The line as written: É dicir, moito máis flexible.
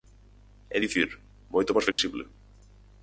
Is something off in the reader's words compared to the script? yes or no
no